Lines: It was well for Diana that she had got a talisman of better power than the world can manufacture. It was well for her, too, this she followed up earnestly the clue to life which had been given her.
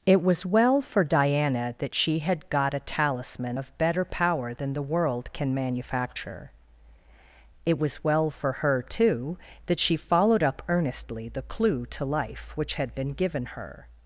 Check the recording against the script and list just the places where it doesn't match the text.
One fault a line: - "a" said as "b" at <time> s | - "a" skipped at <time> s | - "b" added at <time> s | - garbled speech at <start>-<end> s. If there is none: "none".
- "this" said as "that" at 9.7 s